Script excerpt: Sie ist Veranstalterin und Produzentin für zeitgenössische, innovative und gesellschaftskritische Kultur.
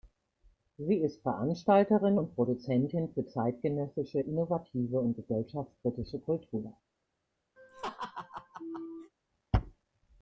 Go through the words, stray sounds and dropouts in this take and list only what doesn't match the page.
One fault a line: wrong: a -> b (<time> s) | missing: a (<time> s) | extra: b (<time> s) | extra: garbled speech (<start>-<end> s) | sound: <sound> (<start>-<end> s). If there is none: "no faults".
sound: laugh (7.6-9.1 s)